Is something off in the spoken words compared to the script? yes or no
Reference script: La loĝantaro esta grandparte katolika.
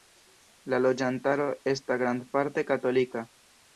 no